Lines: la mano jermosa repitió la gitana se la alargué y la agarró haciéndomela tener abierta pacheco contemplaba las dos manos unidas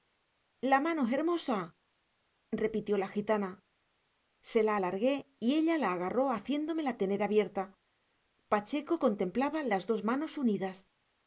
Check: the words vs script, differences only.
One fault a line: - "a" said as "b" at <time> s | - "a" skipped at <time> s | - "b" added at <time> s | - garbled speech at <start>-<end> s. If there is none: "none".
- "ella" added at 5.5 s